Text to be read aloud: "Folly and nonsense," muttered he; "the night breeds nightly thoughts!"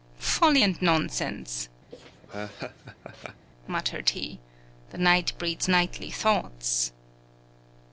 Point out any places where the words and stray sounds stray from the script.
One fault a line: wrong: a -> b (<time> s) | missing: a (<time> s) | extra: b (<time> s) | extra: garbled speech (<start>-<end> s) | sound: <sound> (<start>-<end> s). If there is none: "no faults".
sound: laugh (1.9-3.5 s)